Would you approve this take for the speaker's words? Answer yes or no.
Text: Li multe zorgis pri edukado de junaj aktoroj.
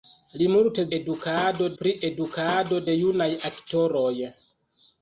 no